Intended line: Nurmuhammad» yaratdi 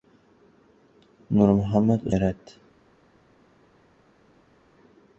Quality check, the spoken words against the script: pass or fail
pass